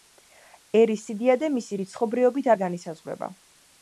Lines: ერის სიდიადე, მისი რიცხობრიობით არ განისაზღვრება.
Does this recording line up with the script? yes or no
yes